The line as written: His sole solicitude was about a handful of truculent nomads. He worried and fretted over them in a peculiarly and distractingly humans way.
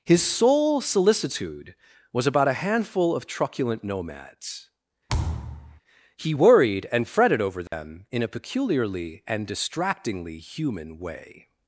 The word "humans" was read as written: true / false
false